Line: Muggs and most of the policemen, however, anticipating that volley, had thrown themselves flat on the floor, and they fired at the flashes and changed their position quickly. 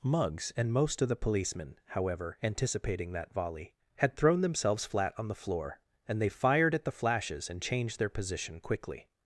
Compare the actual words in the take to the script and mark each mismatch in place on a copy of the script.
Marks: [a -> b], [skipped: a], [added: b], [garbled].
Muggs and most of the policemen, however, anticipating that volley, had thrown themselves flat on the floor, and they fired at the flashes and changed their position quickly.